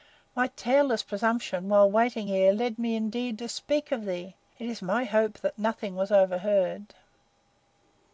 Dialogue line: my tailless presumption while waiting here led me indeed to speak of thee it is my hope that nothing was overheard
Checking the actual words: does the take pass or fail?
pass